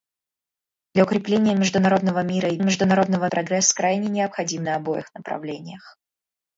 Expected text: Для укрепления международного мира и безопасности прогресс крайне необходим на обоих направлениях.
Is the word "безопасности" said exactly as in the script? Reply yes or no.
no